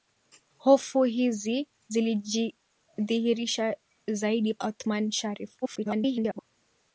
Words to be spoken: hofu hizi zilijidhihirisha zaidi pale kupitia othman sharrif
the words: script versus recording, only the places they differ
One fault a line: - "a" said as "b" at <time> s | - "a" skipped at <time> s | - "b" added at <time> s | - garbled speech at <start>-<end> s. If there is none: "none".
- "pale kupitia" skipped at 4.5 s
- garbled speech at 5.6-6.4 s